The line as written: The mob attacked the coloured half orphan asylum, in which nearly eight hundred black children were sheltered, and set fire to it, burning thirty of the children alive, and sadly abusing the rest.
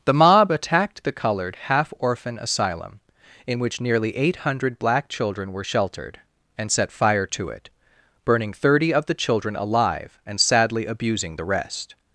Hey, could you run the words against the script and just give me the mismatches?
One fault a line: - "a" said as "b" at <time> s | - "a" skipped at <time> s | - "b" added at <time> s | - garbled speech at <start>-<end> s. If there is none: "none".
none